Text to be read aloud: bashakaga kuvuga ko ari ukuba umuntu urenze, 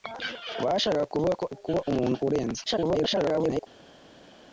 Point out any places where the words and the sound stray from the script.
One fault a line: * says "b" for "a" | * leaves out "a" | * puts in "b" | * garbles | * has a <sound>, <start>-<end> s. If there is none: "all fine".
* leaves out "ari"
* garbles